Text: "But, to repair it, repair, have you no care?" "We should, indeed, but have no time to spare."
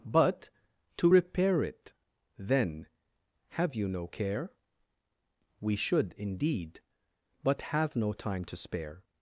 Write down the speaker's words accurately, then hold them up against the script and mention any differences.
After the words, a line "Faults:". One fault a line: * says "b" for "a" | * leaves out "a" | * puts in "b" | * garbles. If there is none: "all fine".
"But, to repair it, then, have you no care?" "We should, indeed, but have no time to spare."
Faults:
* says "then" for "repair"